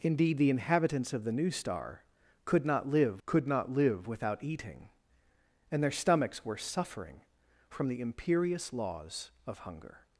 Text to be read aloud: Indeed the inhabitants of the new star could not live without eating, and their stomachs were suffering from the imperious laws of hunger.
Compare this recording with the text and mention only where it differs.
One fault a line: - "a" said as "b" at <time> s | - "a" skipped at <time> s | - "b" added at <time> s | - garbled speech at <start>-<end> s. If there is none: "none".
- "could not live" added at 3.2 s